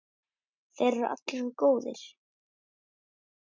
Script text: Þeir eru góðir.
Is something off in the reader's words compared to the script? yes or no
yes